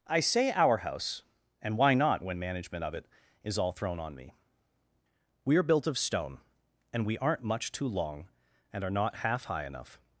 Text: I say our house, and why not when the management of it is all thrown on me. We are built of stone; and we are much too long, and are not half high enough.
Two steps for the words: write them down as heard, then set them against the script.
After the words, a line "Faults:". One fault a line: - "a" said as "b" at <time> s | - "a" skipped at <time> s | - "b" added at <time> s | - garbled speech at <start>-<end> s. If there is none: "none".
I say our house, and why not when management of it is all thrown on me. We are built of stone; and we aren't much too long, and are not half high enough.
Faults:
- "the" skipped at 2.4 s
- "are" said as "aren't" at 7.2 s